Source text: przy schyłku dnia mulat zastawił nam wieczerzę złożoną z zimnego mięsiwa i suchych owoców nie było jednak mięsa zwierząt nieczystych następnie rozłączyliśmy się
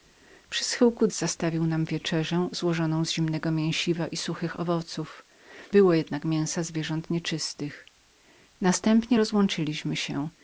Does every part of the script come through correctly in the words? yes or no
no